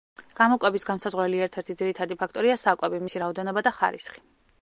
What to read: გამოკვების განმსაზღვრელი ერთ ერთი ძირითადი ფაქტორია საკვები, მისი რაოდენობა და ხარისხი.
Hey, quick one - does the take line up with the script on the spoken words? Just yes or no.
yes